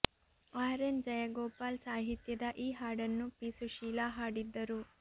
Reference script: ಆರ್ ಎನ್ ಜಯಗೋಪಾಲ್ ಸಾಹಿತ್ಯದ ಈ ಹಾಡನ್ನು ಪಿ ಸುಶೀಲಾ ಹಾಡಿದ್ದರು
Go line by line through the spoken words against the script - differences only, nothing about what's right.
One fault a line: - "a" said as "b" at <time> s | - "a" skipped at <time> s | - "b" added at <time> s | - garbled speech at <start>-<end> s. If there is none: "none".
none